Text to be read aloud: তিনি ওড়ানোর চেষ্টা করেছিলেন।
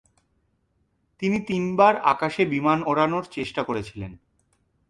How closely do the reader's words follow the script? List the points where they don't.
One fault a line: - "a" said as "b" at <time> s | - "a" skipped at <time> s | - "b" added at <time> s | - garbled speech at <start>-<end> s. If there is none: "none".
- "তিনবার আকাশে বিমান" added at 1.4 s